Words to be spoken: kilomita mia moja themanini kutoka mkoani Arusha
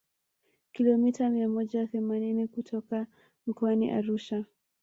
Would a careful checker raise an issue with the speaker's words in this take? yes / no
no